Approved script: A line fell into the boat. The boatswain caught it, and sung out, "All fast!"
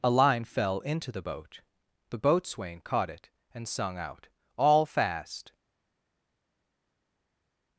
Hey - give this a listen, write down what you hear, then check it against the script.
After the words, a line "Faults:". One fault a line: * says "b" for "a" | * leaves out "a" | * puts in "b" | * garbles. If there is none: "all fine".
A line fell into the boat. The boatswain caught it, and sung out, "All fast!"
Faults:
all fine